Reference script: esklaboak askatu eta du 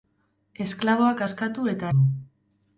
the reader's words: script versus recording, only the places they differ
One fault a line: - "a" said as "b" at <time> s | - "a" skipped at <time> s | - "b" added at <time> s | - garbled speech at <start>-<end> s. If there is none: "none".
none